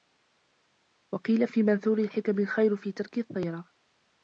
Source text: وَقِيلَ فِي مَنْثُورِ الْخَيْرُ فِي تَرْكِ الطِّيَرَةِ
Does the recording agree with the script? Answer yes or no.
no